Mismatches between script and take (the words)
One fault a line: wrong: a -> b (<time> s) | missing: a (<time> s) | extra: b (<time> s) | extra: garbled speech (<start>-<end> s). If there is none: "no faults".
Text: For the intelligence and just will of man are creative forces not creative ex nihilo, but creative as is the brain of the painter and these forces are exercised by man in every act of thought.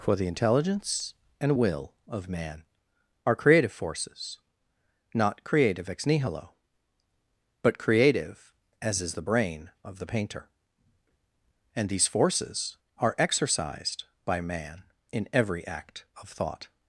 missing: just (1.6 s)